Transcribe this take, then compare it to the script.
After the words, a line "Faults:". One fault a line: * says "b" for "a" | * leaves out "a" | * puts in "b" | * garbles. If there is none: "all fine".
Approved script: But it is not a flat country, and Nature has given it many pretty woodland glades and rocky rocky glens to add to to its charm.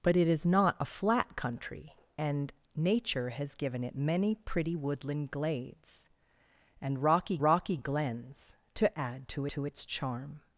But it is not a flat country, and Nature has given it many pretty woodland glades and rocky rocky glens to add to to its charm.
Faults:
all fine